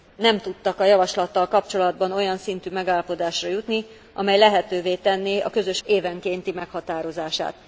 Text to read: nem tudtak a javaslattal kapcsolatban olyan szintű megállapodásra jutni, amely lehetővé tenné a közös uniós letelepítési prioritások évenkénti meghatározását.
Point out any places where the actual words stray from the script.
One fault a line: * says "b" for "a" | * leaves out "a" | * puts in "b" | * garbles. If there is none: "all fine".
* leaves out "uniós letelepítési prioritások"